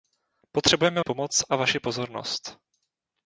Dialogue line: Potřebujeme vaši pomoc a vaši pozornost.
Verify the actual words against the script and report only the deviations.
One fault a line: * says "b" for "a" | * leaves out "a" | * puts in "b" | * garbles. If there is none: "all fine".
* leaves out "vaši"